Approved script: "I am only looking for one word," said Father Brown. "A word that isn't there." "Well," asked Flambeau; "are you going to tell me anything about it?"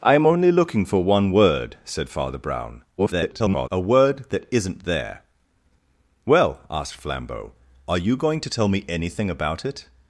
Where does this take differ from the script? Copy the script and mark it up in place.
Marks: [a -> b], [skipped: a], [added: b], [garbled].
"I am only looking for one word," said Father Brown. [garbled] "A word that isn't there." "Well," asked Flambeau; "are you going to tell me anything about it?"